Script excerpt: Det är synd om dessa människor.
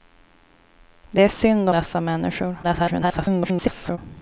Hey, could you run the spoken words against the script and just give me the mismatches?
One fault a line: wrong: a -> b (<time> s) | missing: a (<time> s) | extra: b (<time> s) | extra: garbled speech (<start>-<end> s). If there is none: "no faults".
missing: om (1.7 s)
extra: garbled speech (2.6-4.0 s)